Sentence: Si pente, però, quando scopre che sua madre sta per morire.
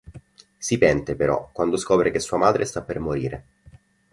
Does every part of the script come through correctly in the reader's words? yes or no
yes